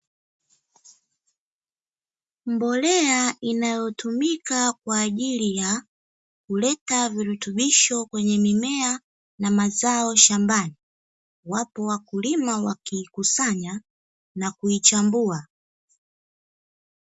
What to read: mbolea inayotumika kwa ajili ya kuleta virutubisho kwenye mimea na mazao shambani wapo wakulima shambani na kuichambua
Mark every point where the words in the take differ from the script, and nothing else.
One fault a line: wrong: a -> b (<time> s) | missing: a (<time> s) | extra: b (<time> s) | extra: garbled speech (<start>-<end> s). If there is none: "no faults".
wrong: shambani -> wakiikusanya (12.6 s)